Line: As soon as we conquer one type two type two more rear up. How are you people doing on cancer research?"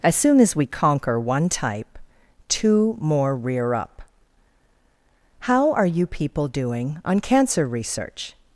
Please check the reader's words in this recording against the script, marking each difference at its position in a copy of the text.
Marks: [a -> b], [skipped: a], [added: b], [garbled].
As soon as we conquer one type two [skipped: type two] more rear up. How are you people doing on cancer research?"